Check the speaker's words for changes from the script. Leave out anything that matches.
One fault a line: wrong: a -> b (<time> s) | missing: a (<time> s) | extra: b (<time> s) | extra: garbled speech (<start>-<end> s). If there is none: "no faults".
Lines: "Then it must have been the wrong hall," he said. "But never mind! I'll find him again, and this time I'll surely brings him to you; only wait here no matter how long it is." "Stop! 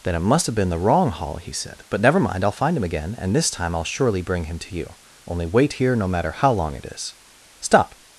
wrong: brings -> bring (4.2 s)